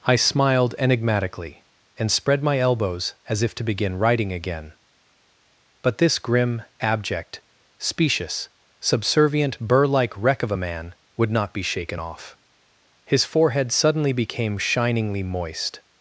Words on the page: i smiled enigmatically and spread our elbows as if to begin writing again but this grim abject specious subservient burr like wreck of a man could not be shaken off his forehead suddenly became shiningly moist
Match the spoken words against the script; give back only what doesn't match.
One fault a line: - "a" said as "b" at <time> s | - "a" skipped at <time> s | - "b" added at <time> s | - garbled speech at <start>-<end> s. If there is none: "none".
- "our" said as "my" at 2.4 s
- "could" said as "would" at 11.2 s